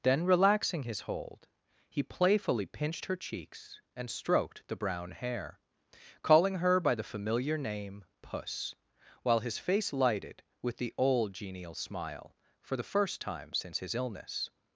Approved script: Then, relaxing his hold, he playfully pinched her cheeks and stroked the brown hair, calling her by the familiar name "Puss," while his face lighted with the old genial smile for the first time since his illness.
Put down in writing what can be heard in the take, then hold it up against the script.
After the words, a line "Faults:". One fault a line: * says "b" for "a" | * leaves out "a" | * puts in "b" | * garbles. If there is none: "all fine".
Then, relaxing his hold, he playfully pinched her cheeks and stroked the brown hair, calling her by the familiar name "Puss," while his face lighted with the old genial smile for the first time since his illness.
Faults:
all fine